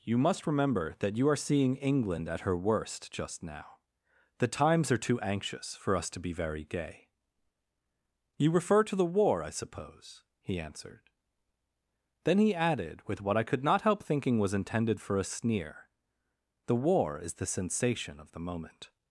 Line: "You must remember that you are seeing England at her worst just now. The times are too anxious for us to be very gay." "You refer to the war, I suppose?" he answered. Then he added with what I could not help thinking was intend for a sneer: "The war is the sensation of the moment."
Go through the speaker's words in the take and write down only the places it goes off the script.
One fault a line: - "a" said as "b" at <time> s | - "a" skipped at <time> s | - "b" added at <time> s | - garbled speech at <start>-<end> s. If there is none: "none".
- "intend" said as "intended" at 14.6 s